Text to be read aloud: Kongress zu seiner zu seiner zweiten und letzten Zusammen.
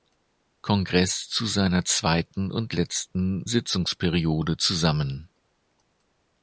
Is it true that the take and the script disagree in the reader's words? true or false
true